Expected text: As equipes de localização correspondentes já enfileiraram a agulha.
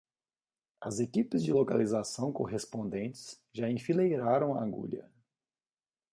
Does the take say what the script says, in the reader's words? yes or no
yes